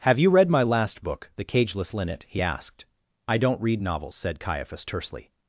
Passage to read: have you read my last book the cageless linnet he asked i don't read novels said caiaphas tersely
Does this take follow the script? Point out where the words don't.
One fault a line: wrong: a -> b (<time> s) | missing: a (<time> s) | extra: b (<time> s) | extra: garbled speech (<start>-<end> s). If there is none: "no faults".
no faults